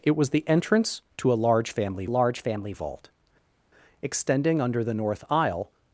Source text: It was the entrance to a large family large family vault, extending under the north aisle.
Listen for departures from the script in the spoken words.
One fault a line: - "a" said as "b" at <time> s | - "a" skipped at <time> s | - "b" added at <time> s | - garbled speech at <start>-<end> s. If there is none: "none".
none